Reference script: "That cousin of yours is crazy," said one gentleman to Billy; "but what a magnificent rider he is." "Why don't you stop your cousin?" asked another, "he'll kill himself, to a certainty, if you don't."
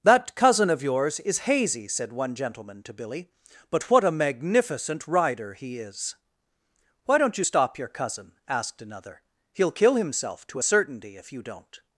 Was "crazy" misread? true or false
true